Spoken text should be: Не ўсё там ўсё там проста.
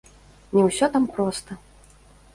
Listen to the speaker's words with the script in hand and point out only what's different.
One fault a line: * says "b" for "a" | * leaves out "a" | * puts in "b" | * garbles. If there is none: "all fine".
* leaves out "ўсё там"